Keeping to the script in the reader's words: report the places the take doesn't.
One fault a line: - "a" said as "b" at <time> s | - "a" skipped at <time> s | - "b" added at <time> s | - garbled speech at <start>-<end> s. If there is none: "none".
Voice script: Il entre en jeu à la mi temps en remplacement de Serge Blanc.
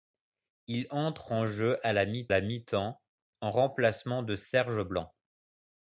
- "la mi" added at 2.3 s